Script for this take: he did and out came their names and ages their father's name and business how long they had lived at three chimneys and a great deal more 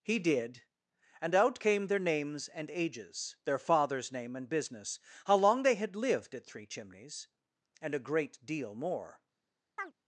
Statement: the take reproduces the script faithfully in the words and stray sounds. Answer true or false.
false